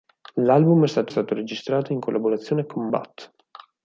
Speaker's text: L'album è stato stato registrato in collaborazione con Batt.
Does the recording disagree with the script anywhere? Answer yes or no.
no